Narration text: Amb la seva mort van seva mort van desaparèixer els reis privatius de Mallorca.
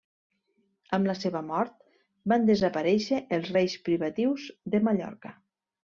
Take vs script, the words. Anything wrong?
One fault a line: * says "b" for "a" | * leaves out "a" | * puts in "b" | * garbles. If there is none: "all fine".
* leaves out "seva mort van"